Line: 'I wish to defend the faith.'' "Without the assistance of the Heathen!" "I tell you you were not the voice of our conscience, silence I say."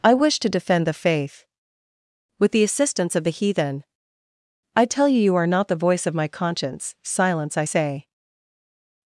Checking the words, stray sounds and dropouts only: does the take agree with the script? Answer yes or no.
no